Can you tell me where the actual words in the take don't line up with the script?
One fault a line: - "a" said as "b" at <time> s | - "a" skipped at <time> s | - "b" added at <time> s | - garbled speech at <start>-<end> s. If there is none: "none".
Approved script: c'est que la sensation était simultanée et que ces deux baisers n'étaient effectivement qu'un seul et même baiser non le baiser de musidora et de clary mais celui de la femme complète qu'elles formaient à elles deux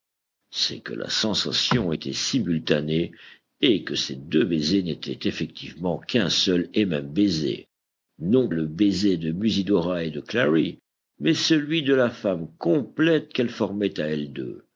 none